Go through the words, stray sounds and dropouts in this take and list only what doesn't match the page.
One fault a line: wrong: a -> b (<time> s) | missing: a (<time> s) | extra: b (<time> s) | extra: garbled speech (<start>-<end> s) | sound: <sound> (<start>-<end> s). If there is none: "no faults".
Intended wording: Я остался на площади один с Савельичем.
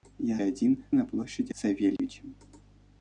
wrong: остался -> один (0.4 s)
missing: один (1.5 s)
sound: dropout (2.0-2.0 s)